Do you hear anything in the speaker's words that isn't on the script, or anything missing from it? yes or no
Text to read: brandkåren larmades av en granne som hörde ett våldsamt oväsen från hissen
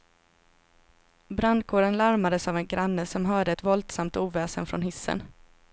no